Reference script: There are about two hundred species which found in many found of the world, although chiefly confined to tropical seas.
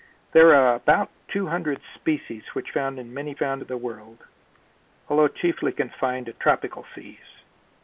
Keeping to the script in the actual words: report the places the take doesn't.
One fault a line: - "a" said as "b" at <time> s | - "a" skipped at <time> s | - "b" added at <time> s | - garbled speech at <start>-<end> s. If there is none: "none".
none